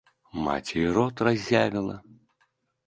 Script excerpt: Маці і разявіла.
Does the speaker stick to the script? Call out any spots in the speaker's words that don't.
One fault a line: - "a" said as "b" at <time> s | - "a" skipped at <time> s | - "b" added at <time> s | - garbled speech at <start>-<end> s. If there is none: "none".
- "рот" added at 0.9 s